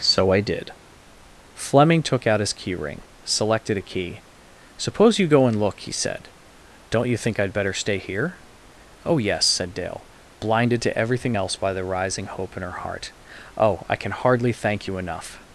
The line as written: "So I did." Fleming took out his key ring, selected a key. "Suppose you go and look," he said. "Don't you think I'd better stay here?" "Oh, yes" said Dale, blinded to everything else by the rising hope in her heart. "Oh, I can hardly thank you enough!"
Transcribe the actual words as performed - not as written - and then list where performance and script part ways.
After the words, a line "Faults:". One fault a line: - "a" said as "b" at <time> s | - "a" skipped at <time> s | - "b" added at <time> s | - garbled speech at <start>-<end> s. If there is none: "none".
"So I did." Fleming took out his key ring, selected a key. "Suppose you go and look," he said. "Don't you think I'd better stay here?" "Oh, yes" said Dale, blinded to everything else by the rising hope in her heart. "Oh, I can hardly thank you enough!"
Faults:
none